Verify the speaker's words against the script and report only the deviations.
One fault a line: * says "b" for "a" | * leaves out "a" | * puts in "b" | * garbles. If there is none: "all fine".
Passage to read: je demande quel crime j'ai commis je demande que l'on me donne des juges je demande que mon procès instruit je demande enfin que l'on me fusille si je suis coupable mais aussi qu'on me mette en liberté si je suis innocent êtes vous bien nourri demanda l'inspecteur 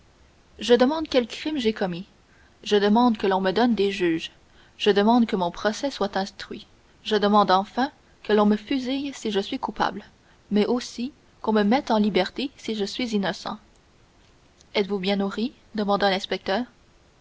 * puts in "soit"